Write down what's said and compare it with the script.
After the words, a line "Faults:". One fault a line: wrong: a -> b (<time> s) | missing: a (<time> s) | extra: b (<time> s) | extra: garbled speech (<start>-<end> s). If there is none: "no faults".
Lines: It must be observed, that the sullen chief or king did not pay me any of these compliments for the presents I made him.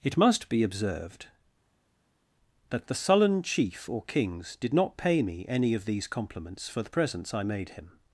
It must be observed, that the sullen chief or kings did not pay me any of these compliments for the presents I made him.
Faults:
wrong: king -> kings (4.0 s)